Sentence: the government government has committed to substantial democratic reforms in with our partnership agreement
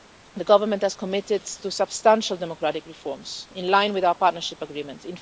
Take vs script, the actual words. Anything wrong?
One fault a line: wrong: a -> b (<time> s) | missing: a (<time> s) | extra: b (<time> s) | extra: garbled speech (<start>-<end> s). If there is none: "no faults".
missing: government (0.8 s)
extra: line (3.7 s)